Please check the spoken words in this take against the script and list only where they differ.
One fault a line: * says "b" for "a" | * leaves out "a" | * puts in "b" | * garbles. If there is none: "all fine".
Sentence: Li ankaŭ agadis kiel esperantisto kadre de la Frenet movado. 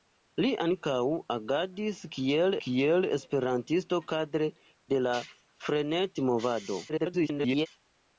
* puts in "kiel"
* garbles